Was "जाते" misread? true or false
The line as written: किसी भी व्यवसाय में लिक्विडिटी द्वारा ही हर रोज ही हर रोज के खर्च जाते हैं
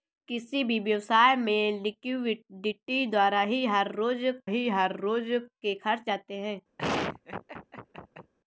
false